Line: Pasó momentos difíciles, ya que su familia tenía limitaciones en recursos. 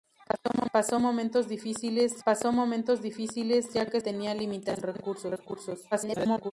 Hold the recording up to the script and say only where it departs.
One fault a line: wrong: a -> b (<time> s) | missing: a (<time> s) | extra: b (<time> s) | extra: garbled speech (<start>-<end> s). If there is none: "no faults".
extra: pasó momentos difíciles (2.2 s)
missing: su familia (4.0 s)
extra: garbled speech (5.9-6.5 s)